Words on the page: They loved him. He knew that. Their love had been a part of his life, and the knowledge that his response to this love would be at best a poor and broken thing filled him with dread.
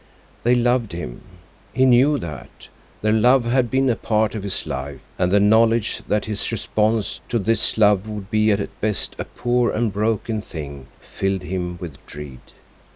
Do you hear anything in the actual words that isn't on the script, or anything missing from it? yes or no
no